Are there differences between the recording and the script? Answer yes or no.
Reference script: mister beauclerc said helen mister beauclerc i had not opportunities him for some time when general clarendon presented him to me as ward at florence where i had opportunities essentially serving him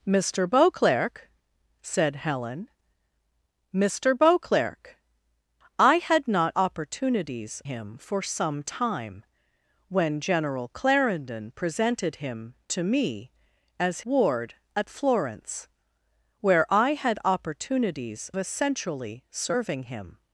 no